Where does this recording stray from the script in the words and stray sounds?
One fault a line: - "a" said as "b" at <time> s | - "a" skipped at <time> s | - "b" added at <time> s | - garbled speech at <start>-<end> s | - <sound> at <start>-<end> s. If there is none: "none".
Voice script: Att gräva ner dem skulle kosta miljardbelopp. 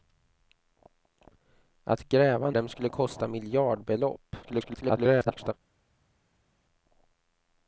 - "ner" skipped at 2.5 s
- garbled speech at 4.4-5.5 s